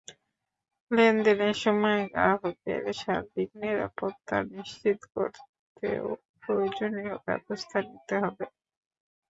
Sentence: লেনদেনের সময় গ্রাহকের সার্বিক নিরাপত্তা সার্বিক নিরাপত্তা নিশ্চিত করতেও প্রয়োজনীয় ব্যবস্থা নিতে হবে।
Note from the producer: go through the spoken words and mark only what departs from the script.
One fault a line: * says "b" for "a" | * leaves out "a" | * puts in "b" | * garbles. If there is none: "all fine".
* leaves out "সার্বিক নিরাপত্তা"